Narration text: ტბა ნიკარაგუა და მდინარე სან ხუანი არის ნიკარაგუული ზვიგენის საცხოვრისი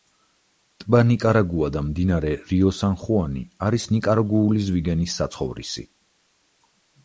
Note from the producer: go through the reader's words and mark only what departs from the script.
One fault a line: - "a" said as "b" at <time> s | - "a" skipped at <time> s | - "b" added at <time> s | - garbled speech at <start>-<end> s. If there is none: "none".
- "რიო" added at 2.5 s